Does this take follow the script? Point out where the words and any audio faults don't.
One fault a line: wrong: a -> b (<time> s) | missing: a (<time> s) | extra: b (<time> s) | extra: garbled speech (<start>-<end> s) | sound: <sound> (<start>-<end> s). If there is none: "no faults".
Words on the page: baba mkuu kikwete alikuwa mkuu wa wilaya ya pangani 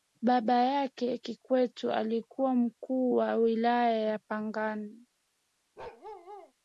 wrong: mkuu -> yake (0.5 s)
sound: bark (5.8-6.5 s)